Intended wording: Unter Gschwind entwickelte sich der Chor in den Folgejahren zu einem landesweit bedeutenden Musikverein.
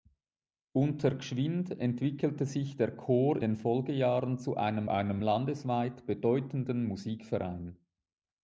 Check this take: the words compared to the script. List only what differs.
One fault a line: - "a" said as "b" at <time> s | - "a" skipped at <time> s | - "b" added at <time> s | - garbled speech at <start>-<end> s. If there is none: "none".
- "in" skipped at 3.4 s
- "einem" added at 4.9 s